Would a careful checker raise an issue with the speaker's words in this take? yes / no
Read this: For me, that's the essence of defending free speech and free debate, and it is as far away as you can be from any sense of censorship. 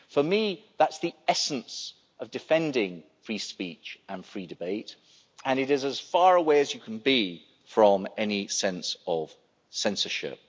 no